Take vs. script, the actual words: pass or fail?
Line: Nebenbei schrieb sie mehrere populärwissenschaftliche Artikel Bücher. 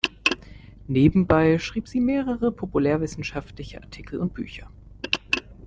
fail